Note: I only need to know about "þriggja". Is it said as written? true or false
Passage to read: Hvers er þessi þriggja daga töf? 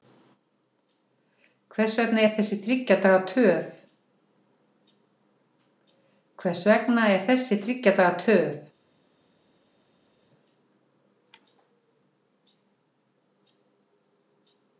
true